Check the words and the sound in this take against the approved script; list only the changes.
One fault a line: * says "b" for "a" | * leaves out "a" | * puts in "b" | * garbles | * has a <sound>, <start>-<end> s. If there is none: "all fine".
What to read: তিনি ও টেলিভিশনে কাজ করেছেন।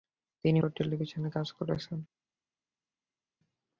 all fine